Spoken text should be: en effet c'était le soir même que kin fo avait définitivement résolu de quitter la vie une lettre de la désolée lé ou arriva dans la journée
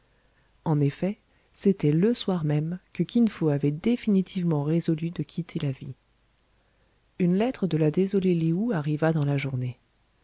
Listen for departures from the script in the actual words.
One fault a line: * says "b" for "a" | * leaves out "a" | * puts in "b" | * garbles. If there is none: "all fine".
all fine